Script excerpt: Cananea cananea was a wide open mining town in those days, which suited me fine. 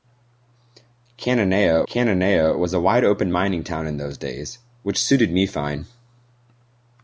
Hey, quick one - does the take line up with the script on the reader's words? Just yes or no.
yes